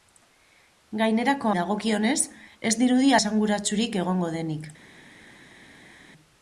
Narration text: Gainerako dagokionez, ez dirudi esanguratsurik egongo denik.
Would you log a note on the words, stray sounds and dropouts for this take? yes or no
no